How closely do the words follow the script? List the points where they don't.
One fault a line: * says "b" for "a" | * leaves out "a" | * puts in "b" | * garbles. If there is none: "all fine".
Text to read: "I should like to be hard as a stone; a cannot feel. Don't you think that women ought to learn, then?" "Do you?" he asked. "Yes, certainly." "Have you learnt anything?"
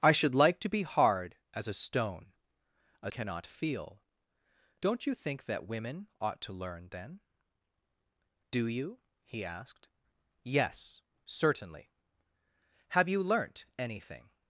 all fine